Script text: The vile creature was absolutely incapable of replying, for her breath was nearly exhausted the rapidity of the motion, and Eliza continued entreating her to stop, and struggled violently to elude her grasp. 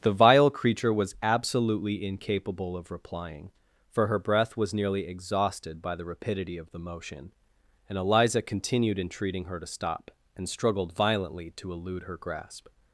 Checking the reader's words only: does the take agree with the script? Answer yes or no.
no